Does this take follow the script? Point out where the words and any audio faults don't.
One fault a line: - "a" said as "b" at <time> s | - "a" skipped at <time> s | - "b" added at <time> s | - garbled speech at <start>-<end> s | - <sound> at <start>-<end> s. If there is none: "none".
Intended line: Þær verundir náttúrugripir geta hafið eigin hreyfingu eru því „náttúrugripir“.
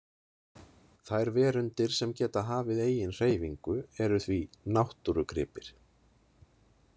- "náttúrugripir" said as "sem" at 2.0 s